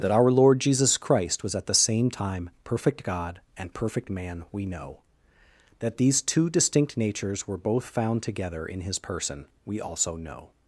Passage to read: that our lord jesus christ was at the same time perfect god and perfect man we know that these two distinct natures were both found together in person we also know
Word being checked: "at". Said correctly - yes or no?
yes